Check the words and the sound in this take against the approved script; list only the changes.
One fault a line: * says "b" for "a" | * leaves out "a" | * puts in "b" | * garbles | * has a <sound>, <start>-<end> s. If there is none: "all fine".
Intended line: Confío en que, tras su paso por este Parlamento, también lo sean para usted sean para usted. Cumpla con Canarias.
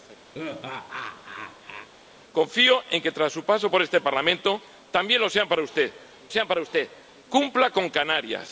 * has a laugh, 0.3-1.9 s